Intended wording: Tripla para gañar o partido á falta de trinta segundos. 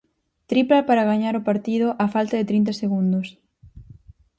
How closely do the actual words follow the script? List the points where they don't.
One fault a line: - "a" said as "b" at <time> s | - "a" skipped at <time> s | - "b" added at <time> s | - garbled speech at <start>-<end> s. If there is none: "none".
none